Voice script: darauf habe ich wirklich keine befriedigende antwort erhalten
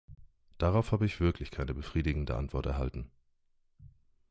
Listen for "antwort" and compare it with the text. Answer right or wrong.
right